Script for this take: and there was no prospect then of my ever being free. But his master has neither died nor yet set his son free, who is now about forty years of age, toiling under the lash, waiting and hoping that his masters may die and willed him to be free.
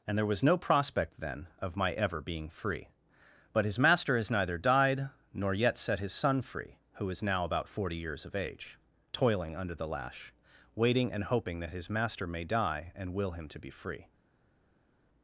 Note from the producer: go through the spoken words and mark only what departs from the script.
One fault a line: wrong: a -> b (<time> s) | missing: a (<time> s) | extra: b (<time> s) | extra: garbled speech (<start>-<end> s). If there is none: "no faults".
wrong: masters -> master (11.9 s)
wrong: willed -> will (13.1 s)